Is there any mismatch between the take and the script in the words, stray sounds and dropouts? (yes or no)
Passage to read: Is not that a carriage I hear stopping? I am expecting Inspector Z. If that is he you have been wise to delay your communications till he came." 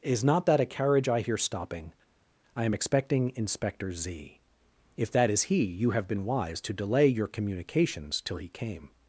no